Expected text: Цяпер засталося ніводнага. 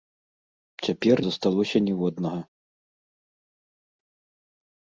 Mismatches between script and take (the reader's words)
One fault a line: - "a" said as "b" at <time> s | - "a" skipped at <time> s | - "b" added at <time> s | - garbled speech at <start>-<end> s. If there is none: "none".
none